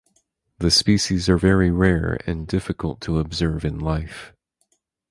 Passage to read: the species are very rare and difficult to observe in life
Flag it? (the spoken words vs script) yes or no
no